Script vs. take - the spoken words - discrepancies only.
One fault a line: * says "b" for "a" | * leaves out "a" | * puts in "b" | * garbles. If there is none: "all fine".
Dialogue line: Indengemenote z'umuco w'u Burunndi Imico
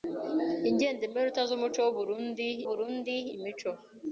* puts in "Burunndi"